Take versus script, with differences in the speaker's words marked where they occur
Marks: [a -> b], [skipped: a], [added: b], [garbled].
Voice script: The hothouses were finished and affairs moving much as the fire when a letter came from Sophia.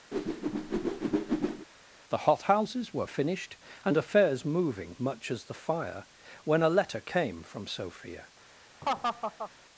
The hothouses were finished and affairs moving much as the fire when a letter came from Sophia.